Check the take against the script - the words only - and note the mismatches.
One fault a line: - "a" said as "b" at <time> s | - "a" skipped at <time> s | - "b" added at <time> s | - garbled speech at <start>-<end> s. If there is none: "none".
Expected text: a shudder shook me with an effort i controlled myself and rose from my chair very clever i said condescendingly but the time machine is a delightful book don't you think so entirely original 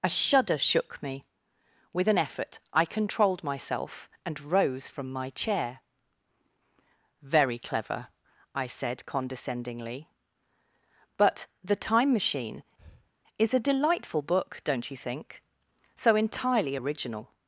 none